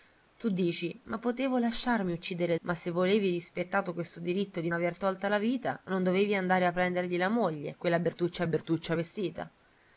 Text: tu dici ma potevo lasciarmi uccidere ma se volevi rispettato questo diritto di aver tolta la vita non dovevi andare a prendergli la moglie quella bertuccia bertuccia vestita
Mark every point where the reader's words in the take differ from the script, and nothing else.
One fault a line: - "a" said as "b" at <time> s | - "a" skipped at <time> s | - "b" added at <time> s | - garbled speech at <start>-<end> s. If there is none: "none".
none